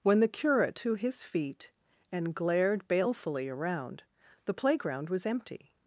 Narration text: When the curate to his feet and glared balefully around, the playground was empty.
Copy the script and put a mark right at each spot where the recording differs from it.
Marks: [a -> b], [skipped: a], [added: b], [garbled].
When the curate to his feet and glared balefully around, the playground was empty.